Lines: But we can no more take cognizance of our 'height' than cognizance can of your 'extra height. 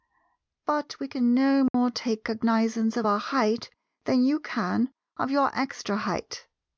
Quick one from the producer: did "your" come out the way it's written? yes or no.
yes